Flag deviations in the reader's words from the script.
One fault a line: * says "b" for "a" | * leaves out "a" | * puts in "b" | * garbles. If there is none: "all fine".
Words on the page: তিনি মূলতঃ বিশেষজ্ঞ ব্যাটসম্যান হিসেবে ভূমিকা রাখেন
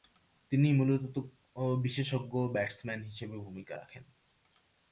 all fine